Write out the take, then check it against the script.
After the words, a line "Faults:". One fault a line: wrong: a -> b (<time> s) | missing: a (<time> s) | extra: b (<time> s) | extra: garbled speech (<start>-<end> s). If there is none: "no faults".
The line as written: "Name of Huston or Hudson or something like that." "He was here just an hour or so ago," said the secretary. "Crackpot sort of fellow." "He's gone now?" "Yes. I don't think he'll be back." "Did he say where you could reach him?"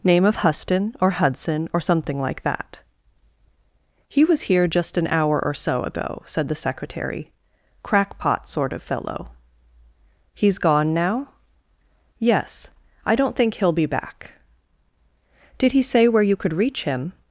"Name of Huston or Hudson or something like that." "He was here just an hour or so ago," said the secretary. "Crackpot sort of fellow." "He's gone now?" "Yes. I don't think he'll be back." "Did he say where you could reach him?"
Faults:
no faults